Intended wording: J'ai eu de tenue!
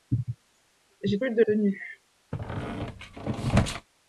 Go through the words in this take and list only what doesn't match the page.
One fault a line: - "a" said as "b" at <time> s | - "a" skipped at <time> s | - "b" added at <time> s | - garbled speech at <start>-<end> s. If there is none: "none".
none